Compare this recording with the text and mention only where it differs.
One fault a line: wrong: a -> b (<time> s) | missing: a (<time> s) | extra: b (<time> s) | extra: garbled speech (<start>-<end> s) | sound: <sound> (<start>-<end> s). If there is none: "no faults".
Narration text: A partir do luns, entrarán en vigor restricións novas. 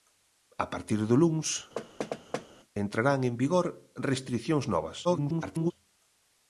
sound: thud (1.8-2.5 s)
extra: garbled speech (5.0-5.7 s)